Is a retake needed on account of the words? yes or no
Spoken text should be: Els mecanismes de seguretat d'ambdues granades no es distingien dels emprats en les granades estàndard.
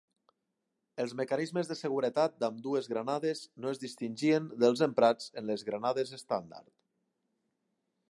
no